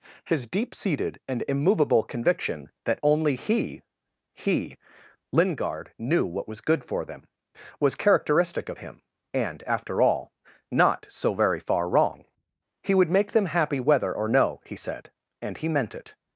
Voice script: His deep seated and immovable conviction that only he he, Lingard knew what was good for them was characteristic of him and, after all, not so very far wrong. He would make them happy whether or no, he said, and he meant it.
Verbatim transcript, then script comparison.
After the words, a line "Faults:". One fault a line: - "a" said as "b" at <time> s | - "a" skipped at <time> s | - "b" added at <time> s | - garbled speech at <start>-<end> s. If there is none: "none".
His deep seated and immovable conviction that only he he, Lingard knew what was good for them was characteristic of him and, after all, not so very far wrong. He would make them happy whether or no, he said, and he meant it.
Faults:
none